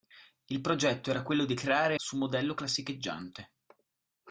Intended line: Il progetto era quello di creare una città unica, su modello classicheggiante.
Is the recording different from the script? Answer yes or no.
yes